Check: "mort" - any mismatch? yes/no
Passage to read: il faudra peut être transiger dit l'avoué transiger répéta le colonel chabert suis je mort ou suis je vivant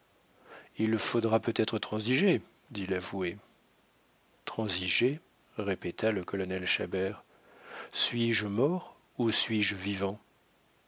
no